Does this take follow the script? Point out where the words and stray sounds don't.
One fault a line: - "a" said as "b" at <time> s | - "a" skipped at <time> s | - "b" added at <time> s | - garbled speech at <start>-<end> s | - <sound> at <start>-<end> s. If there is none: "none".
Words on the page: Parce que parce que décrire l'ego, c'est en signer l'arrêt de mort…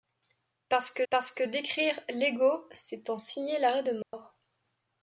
- dropout at 4.0-4.1 s